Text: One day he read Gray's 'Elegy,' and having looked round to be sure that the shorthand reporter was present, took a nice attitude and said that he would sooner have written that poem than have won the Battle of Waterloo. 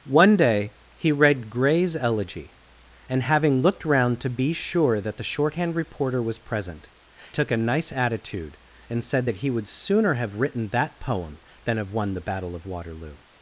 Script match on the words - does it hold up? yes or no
yes